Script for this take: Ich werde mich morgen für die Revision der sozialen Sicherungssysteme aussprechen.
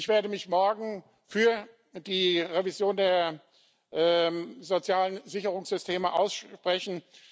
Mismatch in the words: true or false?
false